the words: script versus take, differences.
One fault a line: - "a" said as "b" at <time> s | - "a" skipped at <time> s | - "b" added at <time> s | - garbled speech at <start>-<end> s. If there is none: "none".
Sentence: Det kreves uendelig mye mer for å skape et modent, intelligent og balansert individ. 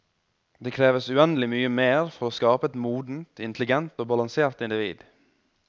none